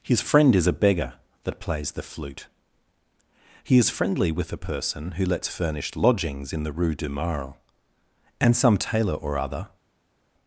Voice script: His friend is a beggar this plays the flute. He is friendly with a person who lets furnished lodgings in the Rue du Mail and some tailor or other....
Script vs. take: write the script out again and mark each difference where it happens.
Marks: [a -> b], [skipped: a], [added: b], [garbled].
His friend is a beggar [this -> that] plays the flute. He is friendly with a person who lets furnished lodgings in the Rue du Mail and some tailor or other....